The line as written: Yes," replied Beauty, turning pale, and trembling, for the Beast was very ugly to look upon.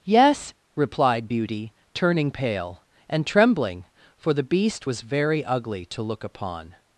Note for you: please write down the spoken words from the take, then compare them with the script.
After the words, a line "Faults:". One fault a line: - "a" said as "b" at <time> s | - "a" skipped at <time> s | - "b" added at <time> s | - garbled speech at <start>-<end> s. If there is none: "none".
Yes," replied Beauty, turning pale, and trembling, for the Beast was very ugly to look upon.
Faults:
none